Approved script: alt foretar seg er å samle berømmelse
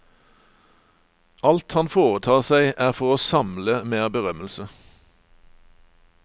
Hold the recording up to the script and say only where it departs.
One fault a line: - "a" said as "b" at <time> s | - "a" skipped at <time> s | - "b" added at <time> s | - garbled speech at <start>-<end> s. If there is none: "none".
- "han" added at 1.7 s
- "for" added at 3.0 s
- "mer" added at 3.9 s